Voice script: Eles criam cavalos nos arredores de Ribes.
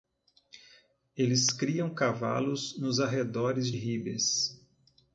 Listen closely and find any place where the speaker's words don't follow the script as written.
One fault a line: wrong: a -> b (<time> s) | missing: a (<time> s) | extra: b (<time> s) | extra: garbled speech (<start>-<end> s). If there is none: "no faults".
missing: de (3.7 s)